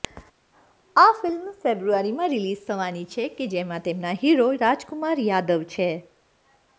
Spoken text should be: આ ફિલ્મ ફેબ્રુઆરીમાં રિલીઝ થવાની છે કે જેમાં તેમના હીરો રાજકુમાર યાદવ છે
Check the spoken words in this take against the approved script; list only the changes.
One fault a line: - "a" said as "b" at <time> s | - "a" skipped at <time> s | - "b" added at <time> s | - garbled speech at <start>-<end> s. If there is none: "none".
none